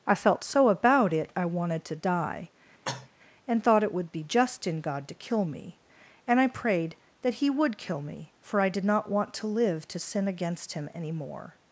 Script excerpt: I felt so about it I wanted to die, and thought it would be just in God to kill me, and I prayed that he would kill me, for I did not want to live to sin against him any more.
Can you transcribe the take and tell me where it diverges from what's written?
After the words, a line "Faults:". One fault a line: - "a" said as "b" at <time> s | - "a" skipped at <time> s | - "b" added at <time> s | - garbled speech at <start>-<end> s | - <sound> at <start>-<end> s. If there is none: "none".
I felt so about it I wanted to die, and thought it would be just in God to kill me, and I prayed that he would kill me, for I did not want to live to sin against him any more.
Faults:
- cough at 2.9-3.1 s